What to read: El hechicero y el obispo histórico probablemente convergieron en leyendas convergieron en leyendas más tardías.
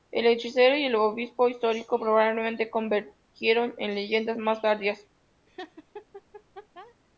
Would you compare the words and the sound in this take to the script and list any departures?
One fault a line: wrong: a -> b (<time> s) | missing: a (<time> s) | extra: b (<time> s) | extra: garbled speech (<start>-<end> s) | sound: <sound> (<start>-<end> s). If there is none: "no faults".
missing: convergieron en leyendas (4.4 s)
sound: laugh (5.5-6.9 s)